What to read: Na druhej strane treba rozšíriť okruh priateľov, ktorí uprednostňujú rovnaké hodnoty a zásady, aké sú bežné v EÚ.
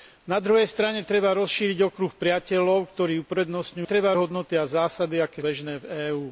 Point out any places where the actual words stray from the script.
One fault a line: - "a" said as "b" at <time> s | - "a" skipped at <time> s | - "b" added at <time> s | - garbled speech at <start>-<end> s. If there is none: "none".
- "rovnaké" said as "treba" at 3.8 s
- "sú" skipped at 5.4 s